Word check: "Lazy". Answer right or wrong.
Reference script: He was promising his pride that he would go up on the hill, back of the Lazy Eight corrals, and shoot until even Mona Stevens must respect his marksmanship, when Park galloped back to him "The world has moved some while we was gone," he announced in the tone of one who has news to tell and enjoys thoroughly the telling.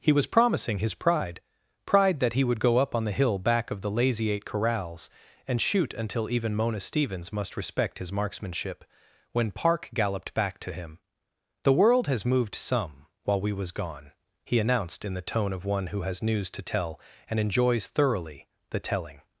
right